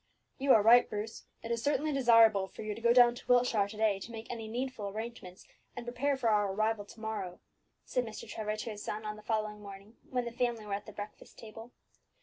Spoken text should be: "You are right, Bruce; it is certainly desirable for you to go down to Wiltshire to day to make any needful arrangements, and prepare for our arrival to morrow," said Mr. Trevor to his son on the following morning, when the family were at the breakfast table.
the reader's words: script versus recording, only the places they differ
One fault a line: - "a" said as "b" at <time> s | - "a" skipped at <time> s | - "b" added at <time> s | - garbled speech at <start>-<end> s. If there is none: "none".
none